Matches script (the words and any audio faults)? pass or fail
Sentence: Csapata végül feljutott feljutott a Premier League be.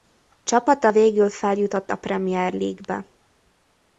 fail